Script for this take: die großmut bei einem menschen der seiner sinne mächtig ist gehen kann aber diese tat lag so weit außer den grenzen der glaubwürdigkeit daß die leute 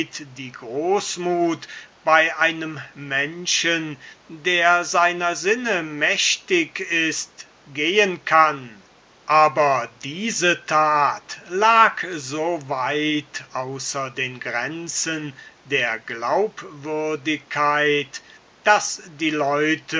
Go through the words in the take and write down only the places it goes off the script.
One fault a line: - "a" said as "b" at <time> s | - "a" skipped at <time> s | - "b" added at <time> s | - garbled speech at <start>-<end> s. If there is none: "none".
none